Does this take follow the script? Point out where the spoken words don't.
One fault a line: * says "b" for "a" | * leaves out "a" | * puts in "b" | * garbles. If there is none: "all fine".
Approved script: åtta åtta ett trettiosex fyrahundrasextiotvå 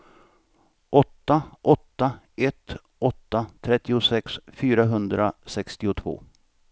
* puts in "åtta"